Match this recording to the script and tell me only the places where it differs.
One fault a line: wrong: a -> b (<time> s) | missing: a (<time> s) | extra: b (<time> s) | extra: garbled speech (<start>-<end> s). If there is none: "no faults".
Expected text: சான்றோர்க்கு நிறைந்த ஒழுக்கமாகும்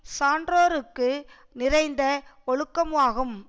no faults